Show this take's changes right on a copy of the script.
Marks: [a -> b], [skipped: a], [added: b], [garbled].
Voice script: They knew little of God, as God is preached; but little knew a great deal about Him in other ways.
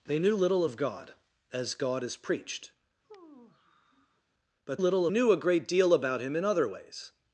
They knew little of God, as God is preached; but little knew a great deal about Him in other ways.